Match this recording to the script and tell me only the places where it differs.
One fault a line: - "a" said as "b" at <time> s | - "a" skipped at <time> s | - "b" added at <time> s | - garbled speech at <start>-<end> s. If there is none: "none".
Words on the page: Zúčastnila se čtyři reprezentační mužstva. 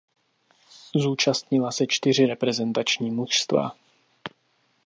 none